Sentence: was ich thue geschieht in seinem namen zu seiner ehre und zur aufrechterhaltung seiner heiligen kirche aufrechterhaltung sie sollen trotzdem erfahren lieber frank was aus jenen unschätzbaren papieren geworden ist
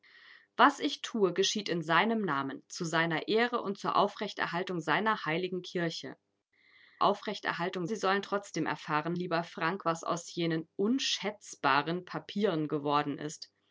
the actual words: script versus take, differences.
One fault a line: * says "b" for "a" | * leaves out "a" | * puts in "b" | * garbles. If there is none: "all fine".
all fine